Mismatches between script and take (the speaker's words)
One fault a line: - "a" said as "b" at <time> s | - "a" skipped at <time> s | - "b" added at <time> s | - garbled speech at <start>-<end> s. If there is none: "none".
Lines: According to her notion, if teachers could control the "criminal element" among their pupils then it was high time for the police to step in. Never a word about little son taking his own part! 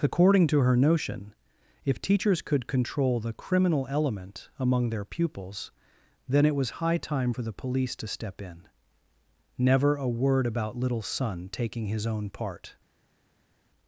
none